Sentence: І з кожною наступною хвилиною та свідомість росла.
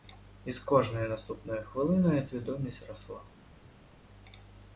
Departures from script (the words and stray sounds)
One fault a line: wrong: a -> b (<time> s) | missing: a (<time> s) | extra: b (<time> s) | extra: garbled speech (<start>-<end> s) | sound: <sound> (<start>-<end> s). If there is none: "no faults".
missing: та (2.3 s)